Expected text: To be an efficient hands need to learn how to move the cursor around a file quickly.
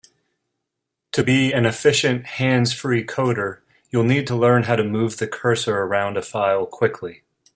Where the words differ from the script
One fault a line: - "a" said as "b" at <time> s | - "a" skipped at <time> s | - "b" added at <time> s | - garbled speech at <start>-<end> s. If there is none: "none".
- "free coder you'll" added at 2.7 s